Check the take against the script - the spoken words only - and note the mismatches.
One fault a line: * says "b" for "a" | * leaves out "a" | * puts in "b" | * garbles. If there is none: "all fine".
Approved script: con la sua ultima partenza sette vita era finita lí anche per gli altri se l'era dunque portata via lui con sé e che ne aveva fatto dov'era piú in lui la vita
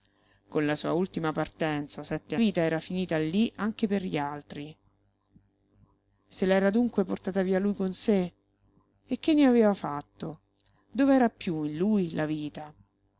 all fine